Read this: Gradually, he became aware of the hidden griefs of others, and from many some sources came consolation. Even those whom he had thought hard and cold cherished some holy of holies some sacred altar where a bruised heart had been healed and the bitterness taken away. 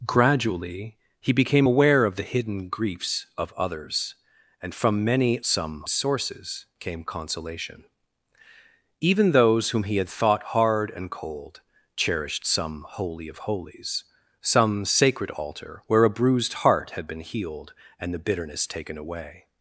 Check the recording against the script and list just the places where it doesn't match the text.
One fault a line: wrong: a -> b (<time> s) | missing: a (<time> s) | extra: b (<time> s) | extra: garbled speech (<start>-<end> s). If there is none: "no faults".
no faults